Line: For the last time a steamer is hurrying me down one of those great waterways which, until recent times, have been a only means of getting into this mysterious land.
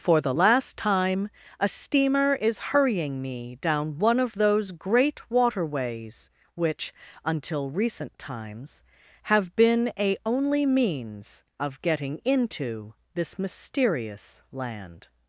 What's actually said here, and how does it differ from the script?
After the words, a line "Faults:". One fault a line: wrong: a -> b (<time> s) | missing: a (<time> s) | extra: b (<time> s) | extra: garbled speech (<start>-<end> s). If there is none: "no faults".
For the last time a steamer is hurrying me down one of those great waterways which, until recent times, have been a only means of getting into this mysterious land.
Faults:
no faults